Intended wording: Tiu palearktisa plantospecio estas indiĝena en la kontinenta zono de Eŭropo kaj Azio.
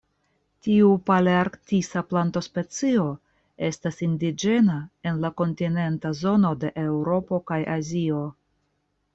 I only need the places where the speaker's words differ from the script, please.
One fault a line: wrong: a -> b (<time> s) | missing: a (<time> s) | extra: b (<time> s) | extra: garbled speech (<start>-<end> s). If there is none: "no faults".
no faults